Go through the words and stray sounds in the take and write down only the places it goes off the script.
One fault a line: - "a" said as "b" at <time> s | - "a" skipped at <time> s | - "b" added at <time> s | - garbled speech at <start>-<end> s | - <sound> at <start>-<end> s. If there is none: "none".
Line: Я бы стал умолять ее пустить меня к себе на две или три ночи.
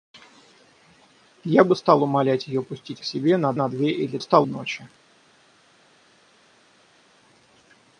- "меня" skipped at 3.0 s
- "на" added at 3.5 s
- "три" said as "стал" at 4.2 s